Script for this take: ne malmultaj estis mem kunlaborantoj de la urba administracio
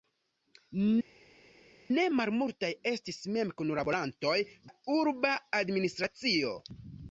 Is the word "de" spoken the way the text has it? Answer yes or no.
no